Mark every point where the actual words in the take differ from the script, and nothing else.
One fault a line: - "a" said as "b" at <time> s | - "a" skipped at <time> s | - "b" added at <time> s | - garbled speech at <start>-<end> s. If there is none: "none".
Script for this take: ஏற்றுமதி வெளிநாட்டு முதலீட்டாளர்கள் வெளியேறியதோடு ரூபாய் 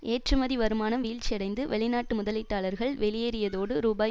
- "வருமானம் வீழ்ச்சியடைந்து" added at 0.6 s